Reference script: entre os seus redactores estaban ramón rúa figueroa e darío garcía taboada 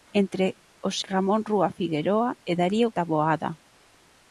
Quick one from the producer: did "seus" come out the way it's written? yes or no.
no